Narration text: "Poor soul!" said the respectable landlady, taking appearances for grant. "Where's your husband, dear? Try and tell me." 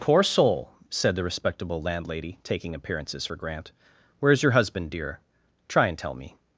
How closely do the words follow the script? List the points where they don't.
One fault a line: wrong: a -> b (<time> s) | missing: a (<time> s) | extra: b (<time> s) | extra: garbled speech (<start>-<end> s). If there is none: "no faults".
no faults